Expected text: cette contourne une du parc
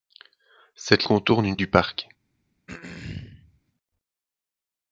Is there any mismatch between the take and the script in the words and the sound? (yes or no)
yes